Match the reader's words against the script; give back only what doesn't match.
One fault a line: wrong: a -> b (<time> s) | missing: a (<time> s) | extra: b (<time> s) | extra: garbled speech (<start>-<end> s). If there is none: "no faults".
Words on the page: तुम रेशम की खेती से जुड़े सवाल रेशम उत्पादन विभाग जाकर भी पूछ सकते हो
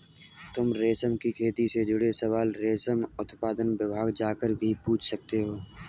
no faults